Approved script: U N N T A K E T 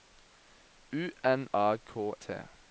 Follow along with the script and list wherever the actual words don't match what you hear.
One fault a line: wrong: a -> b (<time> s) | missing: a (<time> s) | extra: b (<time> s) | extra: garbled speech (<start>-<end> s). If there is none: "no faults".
missing: N T (1.5 s)
missing: E (2.1 s)